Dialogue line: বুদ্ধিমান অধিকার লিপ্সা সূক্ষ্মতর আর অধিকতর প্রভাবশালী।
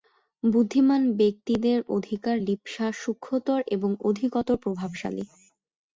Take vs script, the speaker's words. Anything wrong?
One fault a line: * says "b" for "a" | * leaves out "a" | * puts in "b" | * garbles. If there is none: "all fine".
* puts in "ব্যক্তিদের"
* says "এবং" for "আর"